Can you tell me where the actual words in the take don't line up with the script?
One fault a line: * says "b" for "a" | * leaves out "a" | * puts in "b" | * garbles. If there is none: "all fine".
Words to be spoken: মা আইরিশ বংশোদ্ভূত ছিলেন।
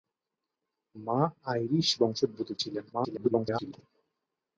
* garbles